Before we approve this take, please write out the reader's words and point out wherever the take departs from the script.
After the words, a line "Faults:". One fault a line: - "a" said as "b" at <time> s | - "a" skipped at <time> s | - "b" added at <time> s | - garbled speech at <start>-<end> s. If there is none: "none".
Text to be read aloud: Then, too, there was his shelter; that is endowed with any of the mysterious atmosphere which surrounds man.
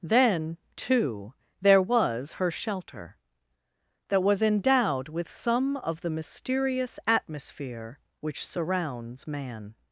Then, too, there was her shelter; that was endowed with some of the mysterious atmosphere which surrounds man.
Faults:
- "his" said as "her" at 2.3 s
- "is" said as "was" at 4.2 s
- "any" said as "some" at 5.3 s